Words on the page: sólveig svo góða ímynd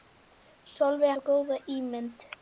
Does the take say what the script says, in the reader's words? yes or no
yes